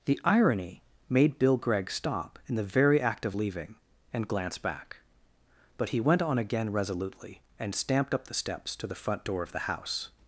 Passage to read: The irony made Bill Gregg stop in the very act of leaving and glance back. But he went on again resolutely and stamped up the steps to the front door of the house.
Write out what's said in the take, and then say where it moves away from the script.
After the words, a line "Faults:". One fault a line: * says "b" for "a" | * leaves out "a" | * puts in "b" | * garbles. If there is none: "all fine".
The irony made Bill Gregg stop in the very act of leaving and glance back. But he went on again resolutely and stamped up the steps to the front door of the house.
Faults:
all fine